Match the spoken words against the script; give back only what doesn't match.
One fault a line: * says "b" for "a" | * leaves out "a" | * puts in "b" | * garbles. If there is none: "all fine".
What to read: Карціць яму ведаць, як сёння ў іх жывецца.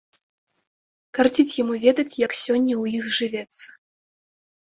all fine